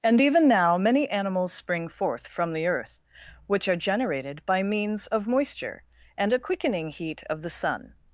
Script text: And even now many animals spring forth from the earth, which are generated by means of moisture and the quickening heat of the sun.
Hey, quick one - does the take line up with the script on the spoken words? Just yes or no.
no